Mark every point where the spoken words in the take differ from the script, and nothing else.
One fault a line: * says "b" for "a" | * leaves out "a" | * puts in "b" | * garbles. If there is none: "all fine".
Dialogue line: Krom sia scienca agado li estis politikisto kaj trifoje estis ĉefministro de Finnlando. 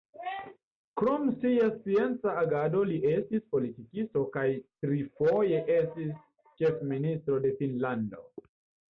all fine